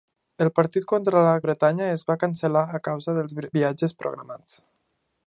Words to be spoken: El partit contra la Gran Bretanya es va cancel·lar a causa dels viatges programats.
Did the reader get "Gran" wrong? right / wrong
wrong